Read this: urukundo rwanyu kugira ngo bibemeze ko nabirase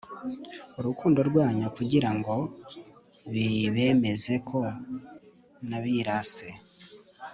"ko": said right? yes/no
yes